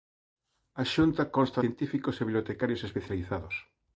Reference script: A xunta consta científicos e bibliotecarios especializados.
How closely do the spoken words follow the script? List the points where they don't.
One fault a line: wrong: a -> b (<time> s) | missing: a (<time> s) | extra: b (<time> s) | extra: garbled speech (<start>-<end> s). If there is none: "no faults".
no faults